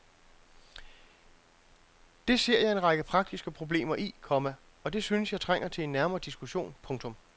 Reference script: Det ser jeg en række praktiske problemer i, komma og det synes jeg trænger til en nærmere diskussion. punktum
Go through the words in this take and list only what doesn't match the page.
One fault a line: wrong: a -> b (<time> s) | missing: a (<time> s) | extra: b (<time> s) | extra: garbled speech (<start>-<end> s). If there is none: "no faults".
no faults